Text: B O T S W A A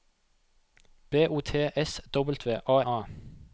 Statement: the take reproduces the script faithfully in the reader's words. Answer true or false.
true